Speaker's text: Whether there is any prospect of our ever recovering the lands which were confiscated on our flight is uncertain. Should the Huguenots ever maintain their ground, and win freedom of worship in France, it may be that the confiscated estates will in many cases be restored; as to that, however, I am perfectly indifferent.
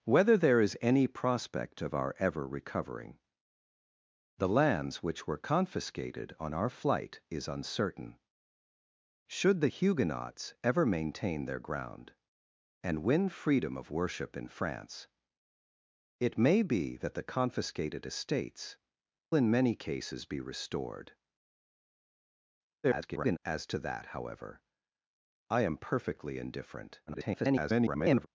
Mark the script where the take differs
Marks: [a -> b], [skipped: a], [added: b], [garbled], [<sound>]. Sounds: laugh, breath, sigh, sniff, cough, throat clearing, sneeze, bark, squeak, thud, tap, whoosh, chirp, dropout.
Whether there is any prospect of our ever recovering the lands which were confiscated on our flight is uncertain. Should the Huguenots ever maintain their ground, and win freedom of worship in France, it may be that the confiscated estates [skipped: will] in many cases be restored; [garbled] as to that, however, I am perfectly indifferent. [garbled]